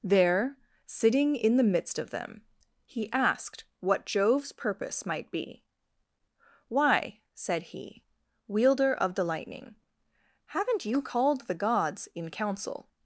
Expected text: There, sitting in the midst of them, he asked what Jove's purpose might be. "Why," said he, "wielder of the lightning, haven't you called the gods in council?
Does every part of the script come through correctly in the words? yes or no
yes